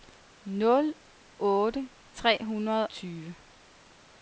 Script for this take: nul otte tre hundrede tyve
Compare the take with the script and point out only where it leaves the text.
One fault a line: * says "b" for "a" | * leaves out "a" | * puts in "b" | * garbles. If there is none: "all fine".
all fine